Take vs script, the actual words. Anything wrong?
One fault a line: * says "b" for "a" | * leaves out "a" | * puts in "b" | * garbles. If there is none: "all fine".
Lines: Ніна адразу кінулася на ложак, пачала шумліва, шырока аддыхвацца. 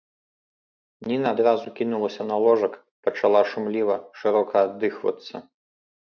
all fine